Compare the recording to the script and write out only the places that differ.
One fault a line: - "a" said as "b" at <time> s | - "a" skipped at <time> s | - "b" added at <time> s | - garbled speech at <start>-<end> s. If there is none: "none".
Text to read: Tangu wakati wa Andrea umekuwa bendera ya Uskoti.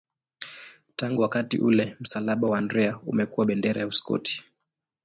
- "ule msalaba" added at 1.6 s